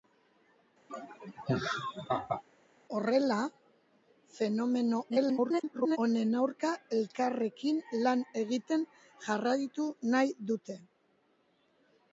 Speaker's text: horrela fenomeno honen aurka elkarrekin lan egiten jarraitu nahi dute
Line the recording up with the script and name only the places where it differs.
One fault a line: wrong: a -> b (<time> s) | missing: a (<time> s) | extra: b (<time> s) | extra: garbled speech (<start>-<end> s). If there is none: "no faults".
extra: garbled speech (5.1-6.0 s)